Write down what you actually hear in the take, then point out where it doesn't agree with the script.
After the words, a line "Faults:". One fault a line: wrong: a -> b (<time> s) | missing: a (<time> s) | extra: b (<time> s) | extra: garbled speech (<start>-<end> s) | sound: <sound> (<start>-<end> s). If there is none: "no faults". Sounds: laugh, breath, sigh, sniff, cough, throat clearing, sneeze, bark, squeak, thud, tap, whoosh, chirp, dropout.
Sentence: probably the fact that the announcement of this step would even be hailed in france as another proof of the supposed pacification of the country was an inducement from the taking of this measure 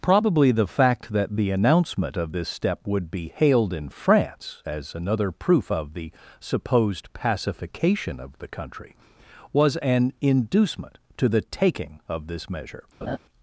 probably the fact that the announcement of this step would be hailed in france as another proof of the supposed pacification of the country was an inducement to the taking of this measure
Faults:
missing: even (3.1 s)
wrong: from -> to (11.2 s)
sound: laugh (13.0-13.2 s)